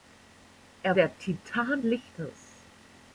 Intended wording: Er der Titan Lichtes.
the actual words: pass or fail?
pass